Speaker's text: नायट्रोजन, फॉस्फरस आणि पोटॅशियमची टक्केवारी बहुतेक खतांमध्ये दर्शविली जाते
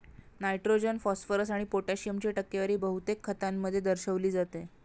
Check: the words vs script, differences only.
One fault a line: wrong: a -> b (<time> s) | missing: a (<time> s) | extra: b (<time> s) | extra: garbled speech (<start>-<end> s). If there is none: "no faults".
no faults